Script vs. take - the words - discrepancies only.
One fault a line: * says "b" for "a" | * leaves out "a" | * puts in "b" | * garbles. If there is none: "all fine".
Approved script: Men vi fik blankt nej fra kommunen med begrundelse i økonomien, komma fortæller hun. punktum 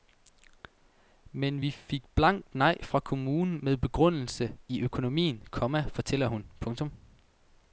all fine